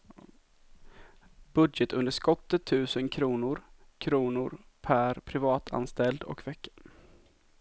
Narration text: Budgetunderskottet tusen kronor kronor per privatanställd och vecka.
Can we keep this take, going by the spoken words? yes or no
yes